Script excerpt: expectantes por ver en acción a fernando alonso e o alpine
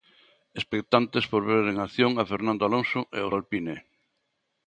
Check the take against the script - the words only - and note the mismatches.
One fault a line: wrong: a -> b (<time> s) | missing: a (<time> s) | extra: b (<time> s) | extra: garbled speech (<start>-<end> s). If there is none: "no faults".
no faults